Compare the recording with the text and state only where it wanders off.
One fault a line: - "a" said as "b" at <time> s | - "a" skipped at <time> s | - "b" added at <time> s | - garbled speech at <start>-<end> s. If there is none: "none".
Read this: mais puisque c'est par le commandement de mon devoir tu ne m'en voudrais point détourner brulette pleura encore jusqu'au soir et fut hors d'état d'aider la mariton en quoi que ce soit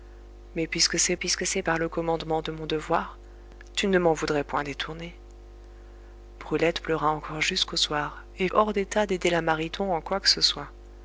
- "puisque c'est" added at 1.1 s
- "fut" skipped at 8.5 s